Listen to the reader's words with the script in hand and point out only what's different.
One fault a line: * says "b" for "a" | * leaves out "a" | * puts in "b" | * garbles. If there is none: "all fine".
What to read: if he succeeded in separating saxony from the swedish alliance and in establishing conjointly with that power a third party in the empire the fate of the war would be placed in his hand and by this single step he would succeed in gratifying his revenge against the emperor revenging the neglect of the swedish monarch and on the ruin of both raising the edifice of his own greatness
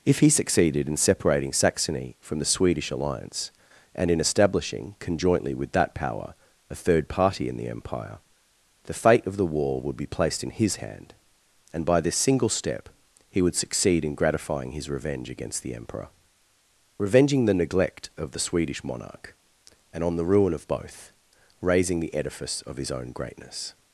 all fine